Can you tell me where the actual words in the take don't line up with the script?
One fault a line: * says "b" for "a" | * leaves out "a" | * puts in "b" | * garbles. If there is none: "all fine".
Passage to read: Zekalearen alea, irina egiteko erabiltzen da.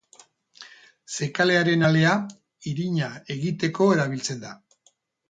all fine